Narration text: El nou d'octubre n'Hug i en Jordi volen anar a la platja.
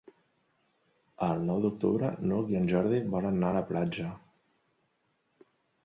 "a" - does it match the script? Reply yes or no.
yes